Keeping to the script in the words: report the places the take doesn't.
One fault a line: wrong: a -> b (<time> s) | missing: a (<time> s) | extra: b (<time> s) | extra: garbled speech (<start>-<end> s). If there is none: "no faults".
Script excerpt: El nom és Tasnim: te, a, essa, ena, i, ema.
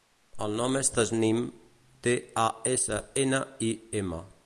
no faults